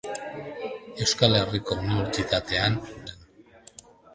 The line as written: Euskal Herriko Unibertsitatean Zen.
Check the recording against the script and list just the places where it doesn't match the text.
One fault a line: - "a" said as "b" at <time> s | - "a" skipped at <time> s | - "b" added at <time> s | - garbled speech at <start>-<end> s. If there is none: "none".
none